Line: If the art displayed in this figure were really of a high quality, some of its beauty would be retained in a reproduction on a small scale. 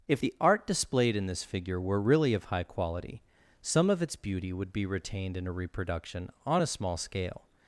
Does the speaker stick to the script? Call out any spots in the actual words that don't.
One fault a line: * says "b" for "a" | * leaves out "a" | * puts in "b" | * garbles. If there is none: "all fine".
* leaves out "a"